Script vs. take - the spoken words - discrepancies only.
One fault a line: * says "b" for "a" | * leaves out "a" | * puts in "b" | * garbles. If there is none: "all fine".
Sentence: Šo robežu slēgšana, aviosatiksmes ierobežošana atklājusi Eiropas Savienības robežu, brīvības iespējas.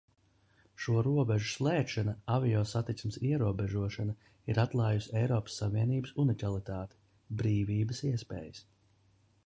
* puts in "ir"
* says "unikalitāti" for "robežu"